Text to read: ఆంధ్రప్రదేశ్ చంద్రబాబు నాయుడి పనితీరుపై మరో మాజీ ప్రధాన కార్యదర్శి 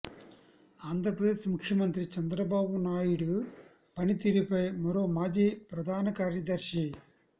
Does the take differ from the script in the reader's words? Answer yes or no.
yes